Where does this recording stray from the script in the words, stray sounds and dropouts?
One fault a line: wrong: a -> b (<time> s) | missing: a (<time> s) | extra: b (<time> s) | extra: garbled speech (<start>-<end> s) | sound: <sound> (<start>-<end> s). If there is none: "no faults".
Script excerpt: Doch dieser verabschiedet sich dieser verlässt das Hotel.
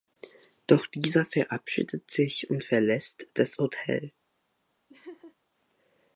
wrong: dieser -> und (2.5 s)
sound: laugh (4.9-5.4 s)